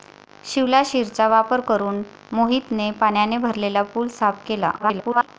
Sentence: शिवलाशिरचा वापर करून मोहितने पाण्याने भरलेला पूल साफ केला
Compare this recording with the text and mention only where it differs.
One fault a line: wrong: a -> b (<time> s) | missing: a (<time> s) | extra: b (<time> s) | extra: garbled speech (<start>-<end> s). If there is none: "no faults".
extra: garbled speech (4.8-5.3 s)